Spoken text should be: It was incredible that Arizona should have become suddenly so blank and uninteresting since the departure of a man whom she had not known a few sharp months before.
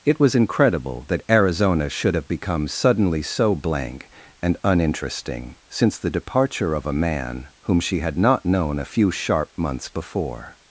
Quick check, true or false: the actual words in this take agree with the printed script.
true